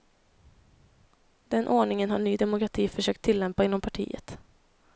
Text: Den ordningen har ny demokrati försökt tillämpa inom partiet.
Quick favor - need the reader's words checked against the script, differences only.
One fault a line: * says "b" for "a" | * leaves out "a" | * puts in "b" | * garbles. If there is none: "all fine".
all fine